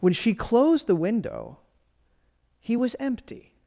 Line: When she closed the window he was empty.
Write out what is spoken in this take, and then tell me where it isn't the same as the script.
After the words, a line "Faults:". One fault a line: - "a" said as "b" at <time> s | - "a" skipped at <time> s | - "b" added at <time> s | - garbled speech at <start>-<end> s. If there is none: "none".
When she closed the window he was empty.
Faults:
none